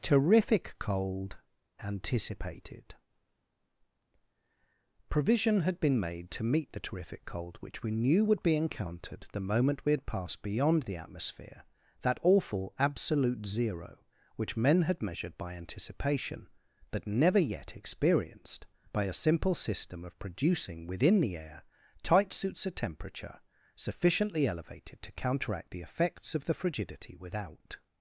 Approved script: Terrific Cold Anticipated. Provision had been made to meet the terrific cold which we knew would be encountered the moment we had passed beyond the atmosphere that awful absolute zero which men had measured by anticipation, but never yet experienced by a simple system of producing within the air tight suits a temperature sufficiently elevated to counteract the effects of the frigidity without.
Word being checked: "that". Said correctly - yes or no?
yes